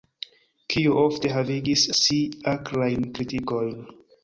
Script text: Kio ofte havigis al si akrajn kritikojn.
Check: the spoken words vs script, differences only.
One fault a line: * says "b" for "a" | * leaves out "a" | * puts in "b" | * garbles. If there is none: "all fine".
* leaves out "al"